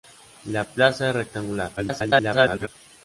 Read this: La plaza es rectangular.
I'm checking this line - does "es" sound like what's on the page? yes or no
yes